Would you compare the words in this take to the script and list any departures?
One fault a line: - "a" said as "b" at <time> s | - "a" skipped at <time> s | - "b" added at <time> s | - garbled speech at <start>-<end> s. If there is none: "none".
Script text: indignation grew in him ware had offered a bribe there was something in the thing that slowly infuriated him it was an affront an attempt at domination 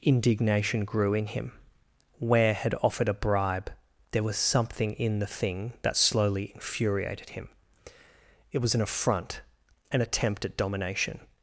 none